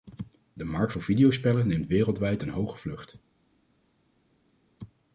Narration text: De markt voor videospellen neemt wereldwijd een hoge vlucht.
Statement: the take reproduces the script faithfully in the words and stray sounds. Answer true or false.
true